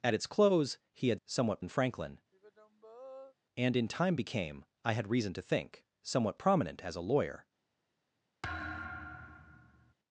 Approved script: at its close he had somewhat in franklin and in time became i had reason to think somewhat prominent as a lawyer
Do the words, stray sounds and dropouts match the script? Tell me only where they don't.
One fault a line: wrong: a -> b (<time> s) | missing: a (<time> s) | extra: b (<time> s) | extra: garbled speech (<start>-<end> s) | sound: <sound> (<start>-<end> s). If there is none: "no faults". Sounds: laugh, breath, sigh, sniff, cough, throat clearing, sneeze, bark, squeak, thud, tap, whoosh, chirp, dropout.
sound: sigh (2.3-3.3 s)
sound: thud (8.4-9.9 s)